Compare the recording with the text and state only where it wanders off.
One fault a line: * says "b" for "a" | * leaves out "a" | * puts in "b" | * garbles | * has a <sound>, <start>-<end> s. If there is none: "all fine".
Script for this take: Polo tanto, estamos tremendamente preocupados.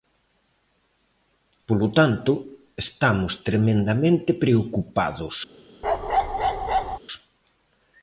* has a bark, 5.8-7.0 s